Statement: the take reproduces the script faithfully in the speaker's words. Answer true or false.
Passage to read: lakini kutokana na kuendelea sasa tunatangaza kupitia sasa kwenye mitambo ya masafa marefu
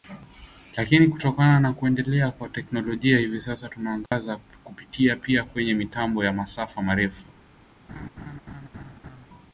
false